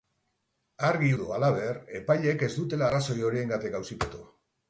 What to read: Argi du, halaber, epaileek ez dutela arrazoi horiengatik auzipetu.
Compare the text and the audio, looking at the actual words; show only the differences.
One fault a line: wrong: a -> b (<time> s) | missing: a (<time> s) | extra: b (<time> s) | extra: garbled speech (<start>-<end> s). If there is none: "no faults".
no faults